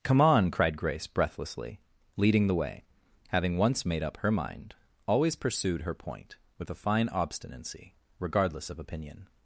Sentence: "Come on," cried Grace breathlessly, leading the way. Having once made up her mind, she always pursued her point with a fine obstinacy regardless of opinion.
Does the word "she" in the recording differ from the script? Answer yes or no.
yes